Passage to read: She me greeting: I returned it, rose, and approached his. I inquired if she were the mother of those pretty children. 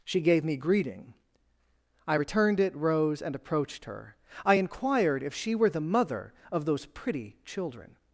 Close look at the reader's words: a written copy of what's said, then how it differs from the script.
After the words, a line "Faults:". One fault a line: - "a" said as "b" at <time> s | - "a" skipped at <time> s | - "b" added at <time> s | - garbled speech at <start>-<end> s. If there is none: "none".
She gave me greeting: I returned it, rose, and approached her. I inquired if she were the mother of those pretty children.
Faults:
- "gave" added at 0.2 s
- "his" said as "her" at 3.9 s